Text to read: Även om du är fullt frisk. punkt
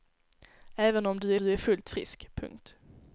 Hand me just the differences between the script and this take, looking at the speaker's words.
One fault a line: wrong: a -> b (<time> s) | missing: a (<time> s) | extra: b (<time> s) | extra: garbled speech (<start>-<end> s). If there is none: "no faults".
extra: du (1.4 s)